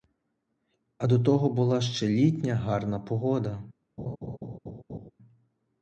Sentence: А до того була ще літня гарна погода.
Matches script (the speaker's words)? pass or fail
pass